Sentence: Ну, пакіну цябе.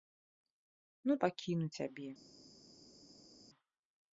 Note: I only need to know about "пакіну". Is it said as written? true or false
true